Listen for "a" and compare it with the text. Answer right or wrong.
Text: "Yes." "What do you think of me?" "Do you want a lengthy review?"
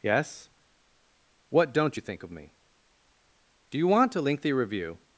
right